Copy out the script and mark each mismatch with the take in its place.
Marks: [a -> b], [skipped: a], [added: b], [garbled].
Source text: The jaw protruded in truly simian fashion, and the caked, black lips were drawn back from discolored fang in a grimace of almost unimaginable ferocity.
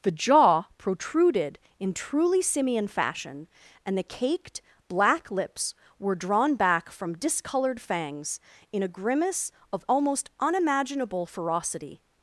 The jaw protruded in truly simian fashion, and the caked, black lips were drawn back from discolored [fang -> fangs] in a grimace of almost unimaginable ferocity.